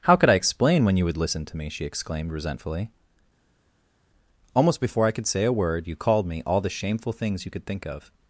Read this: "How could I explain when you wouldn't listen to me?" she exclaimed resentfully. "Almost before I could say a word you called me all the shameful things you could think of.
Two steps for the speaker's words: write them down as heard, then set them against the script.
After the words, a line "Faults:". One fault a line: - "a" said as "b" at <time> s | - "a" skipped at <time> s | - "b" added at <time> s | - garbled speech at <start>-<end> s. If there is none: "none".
"How could I explain when you would listen to me?" she exclaimed resentfully. "Almost before I could say a word you called me all the shameful things you could think of.
Faults:
- "wouldn't" said as "would" at 1.1 s